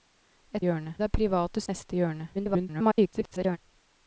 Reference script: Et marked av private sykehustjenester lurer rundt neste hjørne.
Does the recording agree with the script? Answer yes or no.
no